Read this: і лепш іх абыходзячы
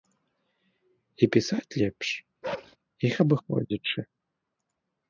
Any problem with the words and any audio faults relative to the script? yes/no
yes